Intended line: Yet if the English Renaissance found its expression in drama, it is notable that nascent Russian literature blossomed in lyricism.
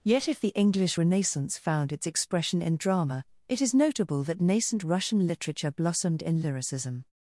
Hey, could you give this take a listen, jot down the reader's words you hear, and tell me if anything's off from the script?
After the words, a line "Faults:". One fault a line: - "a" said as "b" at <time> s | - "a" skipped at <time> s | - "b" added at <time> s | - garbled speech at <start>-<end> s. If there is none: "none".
Yet if the English Renaissance found its expression in drama, it is notable that nascent Russian literature blossomed in lyricism.
Faults:
none